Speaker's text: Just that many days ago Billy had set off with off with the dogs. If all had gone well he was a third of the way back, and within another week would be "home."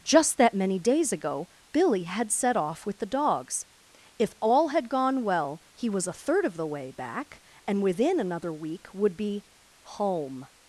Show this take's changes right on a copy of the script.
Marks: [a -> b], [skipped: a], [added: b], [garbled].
Just that many days ago Billy had set off with [skipped: off with] the dogs. If all had gone well he was a third of the way back, and within another week would be "home."